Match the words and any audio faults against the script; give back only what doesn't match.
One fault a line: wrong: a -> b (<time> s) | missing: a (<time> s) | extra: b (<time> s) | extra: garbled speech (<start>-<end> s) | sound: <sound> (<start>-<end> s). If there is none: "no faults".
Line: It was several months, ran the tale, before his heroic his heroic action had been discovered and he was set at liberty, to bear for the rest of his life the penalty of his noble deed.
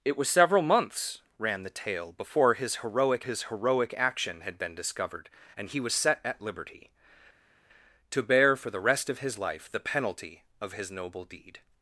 no faults